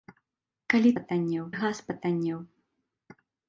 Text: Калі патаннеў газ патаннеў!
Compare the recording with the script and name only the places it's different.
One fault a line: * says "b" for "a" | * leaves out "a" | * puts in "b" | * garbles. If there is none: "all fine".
all fine